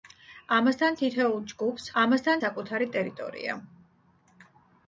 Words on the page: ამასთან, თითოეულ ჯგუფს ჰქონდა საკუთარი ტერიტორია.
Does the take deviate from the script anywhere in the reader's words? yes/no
yes